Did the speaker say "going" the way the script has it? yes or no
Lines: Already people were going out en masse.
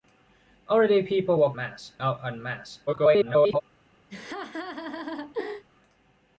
no